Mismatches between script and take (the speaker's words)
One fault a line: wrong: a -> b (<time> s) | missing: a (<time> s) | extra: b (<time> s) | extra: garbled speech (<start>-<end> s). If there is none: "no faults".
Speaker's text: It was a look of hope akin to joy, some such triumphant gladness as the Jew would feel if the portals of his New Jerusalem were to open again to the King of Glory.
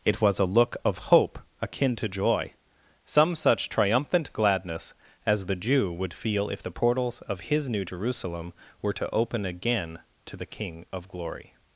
no faults